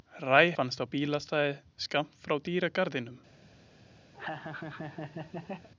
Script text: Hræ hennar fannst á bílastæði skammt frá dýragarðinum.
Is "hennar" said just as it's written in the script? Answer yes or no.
no